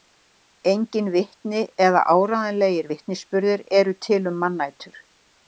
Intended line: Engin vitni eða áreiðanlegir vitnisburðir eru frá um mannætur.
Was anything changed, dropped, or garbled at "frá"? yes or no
yes